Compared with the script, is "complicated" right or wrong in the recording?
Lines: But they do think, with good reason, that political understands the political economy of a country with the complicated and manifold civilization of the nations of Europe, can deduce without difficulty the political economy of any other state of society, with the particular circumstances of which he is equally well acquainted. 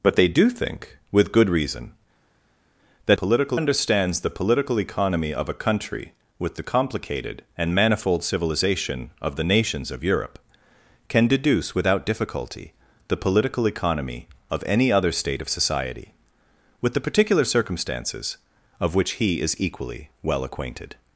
right